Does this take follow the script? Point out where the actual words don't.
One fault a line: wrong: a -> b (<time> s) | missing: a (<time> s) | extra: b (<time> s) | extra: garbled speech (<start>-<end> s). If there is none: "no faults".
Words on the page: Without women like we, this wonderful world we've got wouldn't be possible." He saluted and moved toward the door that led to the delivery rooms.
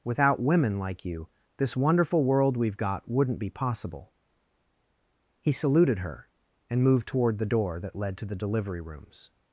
wrong: we -> you (1.1 s)
extra: her (6.0 s)